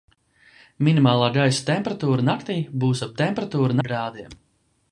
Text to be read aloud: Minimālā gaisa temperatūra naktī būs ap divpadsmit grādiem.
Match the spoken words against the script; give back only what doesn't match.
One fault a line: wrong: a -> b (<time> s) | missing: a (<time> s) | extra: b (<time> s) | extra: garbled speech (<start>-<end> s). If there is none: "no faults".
wrong: divpadsmit -> temperatūra (3.2 s)